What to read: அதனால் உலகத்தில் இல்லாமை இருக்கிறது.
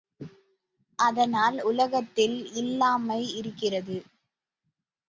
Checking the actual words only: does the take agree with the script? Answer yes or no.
yes